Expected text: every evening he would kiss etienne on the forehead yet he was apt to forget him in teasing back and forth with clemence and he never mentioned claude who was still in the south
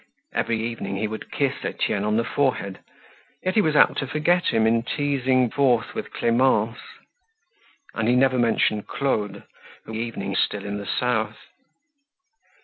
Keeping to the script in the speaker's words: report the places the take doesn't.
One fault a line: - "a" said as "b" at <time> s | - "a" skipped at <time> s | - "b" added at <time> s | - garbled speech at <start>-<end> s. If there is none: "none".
- "back and" skipped at 5.5 s
- "was" said as "evening" at 9.9 s